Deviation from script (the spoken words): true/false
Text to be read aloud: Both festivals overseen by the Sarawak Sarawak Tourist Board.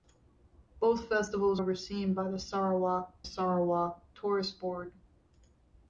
false